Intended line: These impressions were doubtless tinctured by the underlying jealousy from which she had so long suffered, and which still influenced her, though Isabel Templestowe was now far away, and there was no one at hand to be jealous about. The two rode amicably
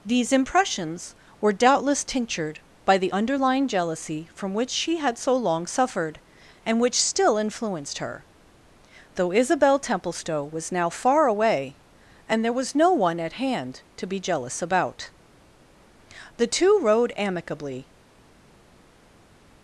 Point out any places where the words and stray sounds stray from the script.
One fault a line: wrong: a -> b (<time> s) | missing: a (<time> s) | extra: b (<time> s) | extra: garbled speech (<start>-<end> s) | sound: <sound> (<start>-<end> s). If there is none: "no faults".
no faults